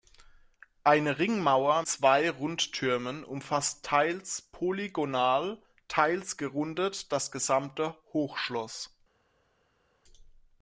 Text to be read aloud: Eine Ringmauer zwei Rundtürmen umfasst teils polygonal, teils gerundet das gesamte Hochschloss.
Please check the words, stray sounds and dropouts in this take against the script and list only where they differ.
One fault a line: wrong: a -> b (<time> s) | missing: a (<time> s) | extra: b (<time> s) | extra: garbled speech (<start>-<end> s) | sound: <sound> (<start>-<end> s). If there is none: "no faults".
no faults